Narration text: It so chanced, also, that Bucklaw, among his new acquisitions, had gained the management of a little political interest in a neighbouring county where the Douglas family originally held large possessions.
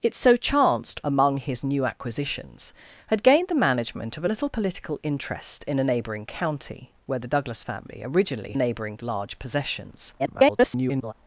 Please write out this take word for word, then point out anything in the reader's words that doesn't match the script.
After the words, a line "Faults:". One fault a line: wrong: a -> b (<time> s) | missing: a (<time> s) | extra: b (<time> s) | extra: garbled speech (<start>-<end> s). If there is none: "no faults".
It so chanced, among his new acquisitions, had gained the management of a little political interest in a neighbouring county where the Douglas family originally neighbouring large possessions. [garbled]
Faults:
missing: also that Bucklaw (1.0 s)
wrong: held -> neighbouring (8.6 s)
extra: garbled speech (10.2-11.1 s)